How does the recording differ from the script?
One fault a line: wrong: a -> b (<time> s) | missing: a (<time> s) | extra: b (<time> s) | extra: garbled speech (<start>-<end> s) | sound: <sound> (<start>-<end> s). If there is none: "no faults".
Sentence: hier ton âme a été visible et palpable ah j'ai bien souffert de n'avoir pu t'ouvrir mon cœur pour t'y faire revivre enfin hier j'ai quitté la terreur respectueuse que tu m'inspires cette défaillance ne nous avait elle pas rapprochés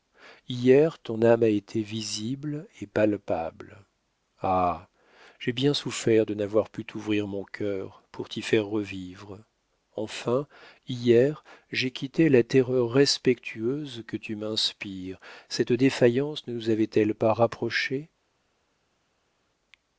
no faults